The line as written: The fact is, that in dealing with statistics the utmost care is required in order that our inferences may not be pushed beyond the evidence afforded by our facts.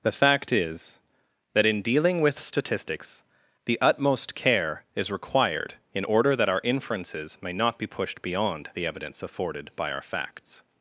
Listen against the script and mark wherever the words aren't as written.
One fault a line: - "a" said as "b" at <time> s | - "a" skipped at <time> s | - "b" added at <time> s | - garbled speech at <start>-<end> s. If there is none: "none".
none